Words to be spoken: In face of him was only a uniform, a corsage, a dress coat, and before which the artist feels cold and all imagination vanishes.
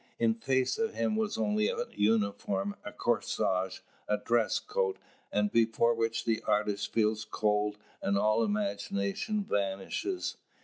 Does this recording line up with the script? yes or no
yes